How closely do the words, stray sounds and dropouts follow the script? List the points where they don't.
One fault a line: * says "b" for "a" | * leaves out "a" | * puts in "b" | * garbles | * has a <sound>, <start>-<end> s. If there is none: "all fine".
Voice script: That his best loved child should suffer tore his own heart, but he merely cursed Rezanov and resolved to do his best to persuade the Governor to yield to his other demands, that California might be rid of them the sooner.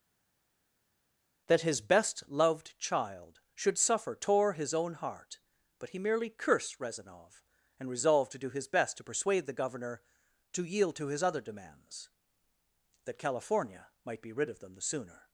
all fine